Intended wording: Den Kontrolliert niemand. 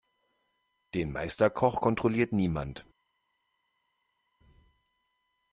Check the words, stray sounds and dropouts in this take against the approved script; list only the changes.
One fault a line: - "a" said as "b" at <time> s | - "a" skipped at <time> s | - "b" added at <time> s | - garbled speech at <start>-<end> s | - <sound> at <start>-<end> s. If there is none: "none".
- "Meisterkoch" added at 1.1 s